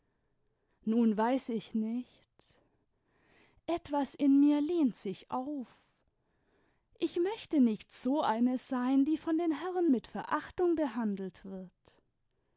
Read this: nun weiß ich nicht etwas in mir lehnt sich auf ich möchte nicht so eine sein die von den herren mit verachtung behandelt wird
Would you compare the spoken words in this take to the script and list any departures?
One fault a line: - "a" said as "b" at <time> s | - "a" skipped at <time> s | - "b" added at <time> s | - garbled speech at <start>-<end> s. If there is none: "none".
none